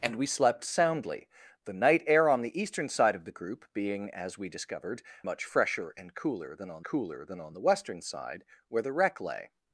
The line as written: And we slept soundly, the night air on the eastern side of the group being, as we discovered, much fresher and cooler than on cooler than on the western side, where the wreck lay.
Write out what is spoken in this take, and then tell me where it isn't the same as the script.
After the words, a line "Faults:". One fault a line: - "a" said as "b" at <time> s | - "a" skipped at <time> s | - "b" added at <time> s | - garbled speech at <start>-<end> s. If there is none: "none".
And we slept soundly, the night air on the eastern side of the group being, as we discovered, much fresher and cooler than on cooler than on the western side, where the wreck lay.
Faults:
none